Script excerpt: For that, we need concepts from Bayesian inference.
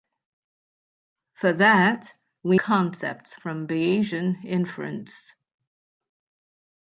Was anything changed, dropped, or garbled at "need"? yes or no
yes